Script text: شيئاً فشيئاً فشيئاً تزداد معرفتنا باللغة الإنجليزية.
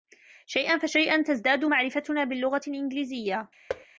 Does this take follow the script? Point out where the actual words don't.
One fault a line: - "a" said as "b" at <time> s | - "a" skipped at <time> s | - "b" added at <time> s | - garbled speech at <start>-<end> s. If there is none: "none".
- "فشيئاً" skipped at 1.2 s